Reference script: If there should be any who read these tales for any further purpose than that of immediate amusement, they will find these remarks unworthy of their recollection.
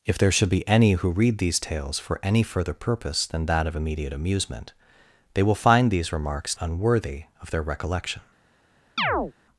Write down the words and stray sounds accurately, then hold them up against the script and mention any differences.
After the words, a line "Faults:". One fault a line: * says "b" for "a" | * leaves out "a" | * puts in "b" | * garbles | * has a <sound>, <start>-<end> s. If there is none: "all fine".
If there should be any who read these tales for any further purpose than that of immediate amusement, they will find these remarks unworthy of their recollection.
Faults:
* has a chirp, 9.0-9.3 s